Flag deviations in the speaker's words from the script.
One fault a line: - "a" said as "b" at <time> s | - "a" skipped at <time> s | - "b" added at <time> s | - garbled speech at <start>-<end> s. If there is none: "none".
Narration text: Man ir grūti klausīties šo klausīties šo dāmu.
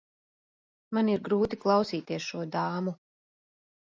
- "klausīties šo" skipped at 2.4 s